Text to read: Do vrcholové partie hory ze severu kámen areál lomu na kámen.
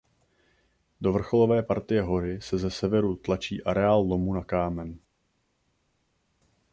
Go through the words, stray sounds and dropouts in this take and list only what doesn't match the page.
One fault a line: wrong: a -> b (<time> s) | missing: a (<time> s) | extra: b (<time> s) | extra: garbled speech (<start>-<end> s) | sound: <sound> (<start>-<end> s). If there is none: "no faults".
extra: se (2.4 s)
wrong: kámen -> tlačí (3.1 s)